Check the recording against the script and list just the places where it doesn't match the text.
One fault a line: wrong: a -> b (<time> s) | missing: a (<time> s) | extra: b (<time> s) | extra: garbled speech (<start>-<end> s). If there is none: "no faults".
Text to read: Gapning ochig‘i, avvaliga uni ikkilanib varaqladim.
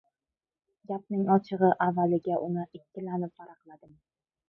no faults